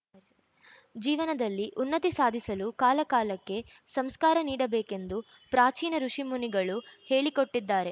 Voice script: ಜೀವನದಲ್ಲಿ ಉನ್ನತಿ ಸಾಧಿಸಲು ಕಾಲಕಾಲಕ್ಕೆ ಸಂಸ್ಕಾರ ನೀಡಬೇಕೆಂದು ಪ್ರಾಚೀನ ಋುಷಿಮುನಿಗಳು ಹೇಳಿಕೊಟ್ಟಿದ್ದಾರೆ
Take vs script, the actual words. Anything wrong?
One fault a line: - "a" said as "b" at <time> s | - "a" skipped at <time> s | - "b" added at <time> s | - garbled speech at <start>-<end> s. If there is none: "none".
none